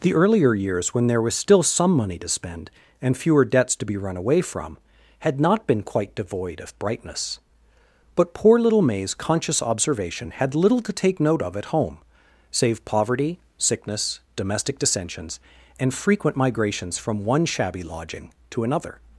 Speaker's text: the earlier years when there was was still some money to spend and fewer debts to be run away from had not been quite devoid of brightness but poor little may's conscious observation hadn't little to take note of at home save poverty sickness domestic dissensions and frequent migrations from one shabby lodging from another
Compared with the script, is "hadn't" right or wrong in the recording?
wrong